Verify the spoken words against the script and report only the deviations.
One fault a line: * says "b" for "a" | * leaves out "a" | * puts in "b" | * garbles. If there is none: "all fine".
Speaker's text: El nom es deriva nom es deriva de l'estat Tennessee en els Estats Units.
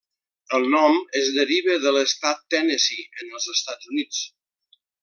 * leaves out "nom es deriva"